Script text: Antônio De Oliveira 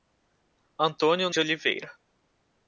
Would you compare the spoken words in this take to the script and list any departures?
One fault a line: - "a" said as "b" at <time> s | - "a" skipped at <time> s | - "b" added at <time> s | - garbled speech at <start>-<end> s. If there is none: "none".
none